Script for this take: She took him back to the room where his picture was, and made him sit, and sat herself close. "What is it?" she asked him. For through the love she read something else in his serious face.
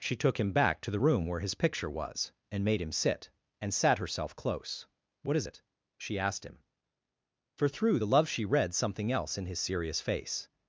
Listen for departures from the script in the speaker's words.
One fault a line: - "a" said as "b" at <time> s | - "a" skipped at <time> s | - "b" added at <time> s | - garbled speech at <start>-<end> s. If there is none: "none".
none